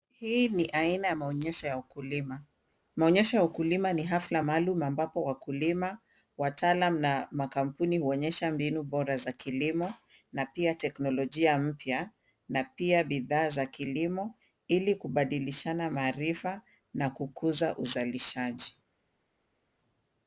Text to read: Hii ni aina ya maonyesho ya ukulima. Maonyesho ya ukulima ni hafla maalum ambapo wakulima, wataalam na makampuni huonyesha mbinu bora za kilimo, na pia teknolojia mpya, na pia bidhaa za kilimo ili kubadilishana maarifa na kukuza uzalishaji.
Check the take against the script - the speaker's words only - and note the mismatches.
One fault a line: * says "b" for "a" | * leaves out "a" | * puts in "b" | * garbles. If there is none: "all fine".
all fine